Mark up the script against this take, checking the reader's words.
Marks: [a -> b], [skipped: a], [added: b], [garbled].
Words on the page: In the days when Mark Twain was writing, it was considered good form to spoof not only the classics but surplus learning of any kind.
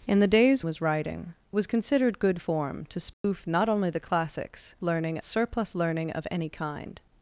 In the days [skipped: when Mark Twain] was writing, [skipped: it] was considered good form to spoof not only the classics [but -> learning] surplus learning of any kind.